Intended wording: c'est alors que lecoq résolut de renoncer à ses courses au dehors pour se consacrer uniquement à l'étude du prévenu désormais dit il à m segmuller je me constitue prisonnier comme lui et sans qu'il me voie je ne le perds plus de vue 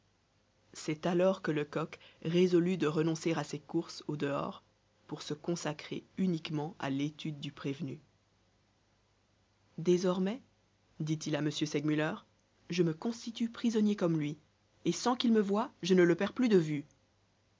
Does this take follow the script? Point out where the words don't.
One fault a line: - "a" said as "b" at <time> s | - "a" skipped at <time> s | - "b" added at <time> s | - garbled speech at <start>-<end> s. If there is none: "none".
none